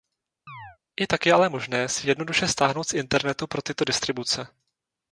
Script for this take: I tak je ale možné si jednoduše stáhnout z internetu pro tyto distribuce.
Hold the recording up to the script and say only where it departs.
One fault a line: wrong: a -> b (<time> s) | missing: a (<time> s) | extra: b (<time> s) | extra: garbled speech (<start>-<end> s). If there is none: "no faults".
no faults